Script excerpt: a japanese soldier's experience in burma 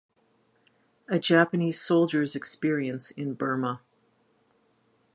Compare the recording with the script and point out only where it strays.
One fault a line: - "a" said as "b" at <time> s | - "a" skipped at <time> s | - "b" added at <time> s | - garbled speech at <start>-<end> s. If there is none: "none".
none